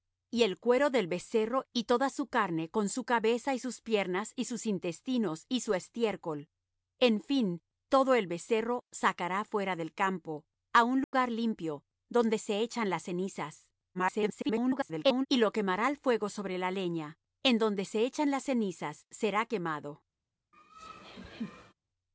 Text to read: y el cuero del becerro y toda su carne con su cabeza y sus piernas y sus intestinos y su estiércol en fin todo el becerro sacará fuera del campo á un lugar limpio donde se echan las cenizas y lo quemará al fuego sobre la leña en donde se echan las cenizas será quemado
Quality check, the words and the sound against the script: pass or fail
fail